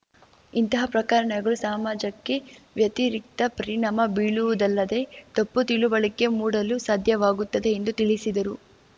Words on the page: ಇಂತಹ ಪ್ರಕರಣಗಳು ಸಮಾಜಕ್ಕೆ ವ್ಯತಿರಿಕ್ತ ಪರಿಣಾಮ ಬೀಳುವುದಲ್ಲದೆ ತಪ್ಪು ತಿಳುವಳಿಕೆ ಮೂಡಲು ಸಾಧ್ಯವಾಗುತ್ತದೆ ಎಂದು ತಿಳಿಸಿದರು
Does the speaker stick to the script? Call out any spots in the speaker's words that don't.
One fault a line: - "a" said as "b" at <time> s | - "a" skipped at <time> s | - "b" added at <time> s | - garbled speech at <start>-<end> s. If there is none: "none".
none